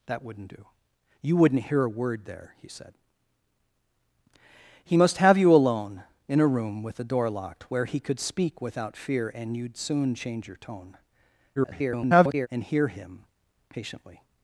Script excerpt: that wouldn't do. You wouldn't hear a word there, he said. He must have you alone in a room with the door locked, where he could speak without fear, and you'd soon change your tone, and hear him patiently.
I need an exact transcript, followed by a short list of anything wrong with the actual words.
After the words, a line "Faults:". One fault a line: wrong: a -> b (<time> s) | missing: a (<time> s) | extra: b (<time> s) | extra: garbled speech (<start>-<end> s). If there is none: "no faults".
that wouldn't do. You wouldn't hear a word there, he said. He must have you alone in a room with the door locked, where he could speak without fear, and you'd soon change your tone, [garbled] and hear him patiently.
Faults:
extra: garbled speech (11.6-12.5 s)